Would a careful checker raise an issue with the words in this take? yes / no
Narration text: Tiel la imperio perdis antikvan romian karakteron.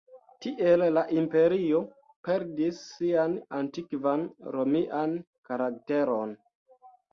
yes